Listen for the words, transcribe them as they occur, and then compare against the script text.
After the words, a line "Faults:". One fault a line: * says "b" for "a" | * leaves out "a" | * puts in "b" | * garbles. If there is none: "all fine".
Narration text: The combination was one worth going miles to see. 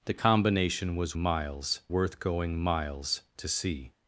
The combination was miles worth going miles to see.
Faults:
* says "miles" for "one"